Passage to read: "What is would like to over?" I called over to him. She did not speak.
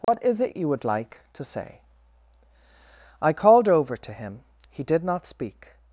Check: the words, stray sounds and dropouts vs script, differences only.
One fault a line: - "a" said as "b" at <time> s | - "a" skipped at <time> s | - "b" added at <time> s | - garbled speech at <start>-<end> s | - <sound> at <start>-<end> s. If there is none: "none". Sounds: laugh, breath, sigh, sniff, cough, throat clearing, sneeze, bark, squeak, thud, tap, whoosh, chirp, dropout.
- dropout at 0.0-0.1 s
- "it you" added at 0.4 s
- "over" said as "say" at 1.4 s
- "She" said as "He" at 4.7 s